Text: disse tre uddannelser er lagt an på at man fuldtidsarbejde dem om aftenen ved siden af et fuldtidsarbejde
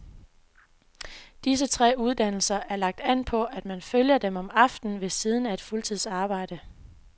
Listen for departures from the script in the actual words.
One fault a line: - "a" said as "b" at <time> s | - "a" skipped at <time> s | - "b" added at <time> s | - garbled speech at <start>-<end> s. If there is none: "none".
- "fuldtidsarbejde" said as "følger" at 3.8 s